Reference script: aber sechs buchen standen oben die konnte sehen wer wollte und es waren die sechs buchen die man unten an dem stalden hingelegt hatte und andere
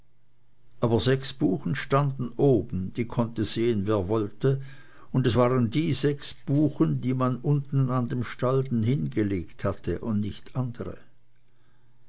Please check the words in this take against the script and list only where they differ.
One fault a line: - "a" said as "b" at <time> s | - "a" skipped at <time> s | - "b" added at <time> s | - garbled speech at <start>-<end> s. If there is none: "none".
- "nicht" added at 10.2 s